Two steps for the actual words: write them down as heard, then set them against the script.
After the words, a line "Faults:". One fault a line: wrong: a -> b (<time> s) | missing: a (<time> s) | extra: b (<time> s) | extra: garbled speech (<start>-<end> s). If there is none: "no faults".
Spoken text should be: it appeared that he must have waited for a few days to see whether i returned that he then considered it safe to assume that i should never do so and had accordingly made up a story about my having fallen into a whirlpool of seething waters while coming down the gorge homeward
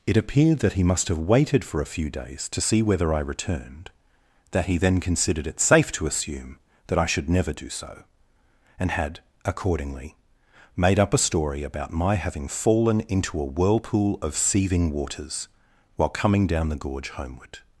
it appeared that he must have waited for a few days to see whether i returned that he then considered it safe to assume that i should never do so and had accordingly made up a story about my having fallen into a whirlpool of seething waters while coming down the gorge homeward
Faults:
no faults